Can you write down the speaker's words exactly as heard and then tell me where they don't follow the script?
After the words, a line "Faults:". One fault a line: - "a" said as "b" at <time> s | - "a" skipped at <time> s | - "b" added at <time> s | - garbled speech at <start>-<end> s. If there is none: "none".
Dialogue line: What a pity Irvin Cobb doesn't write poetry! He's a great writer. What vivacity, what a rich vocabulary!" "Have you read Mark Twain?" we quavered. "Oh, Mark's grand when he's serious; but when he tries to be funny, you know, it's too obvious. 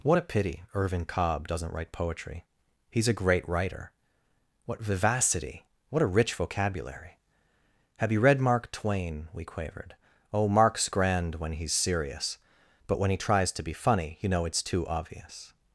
What a pity Irvin Cobb doesn't write poetry! He's a great writer. What vivacity, what a rich vocabulary!" "Have you read Mark Twain?" we quavered. "Oh, Mark's grand when he's serious; but when he tries to be funny, you know, it's too obvious.
Faults:
none